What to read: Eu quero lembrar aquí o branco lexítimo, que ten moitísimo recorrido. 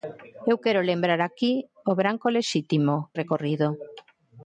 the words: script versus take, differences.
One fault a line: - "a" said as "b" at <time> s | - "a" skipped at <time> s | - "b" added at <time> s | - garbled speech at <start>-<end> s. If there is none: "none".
- "que ten moitísimo" skipped at 3.1 s